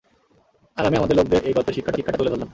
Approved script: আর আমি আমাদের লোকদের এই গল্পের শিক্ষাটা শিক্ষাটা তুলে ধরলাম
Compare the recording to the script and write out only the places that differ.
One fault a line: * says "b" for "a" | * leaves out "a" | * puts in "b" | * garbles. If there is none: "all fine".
all fine